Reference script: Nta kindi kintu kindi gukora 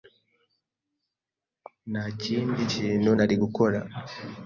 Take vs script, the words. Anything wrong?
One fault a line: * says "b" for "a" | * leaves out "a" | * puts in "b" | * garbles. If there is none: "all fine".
* says "nari" for "kindi"